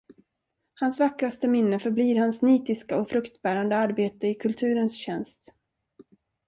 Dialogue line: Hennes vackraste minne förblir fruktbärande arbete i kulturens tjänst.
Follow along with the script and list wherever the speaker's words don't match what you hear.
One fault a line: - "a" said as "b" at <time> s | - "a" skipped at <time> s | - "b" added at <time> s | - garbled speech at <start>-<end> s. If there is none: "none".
- "Hennes" said as "Hans" at 0.7 s
- "hans nitiska och" added at 2.2 s